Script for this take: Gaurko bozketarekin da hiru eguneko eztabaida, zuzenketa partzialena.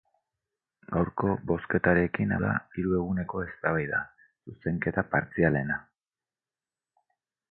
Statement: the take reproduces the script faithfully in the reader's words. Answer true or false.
true